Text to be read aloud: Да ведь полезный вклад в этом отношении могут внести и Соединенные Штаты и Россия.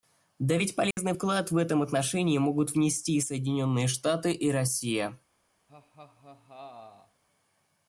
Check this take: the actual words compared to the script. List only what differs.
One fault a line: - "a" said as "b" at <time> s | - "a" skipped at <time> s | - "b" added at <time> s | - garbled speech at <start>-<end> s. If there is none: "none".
none